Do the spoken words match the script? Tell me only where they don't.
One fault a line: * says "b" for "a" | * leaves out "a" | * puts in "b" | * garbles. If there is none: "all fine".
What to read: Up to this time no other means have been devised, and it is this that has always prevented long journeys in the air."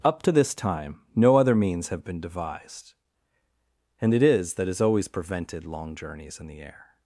* leaves out "this"